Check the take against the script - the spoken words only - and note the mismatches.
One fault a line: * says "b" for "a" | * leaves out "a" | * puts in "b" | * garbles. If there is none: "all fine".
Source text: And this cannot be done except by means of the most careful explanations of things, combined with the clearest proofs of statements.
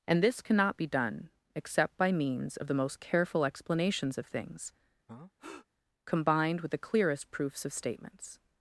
all fine